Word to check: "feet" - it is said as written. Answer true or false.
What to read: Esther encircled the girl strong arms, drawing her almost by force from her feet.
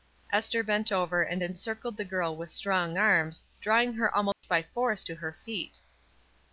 true